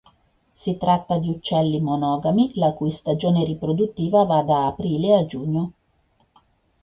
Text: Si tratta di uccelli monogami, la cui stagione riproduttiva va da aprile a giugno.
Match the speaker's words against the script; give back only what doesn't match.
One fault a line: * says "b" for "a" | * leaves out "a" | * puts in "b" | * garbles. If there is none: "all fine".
all fine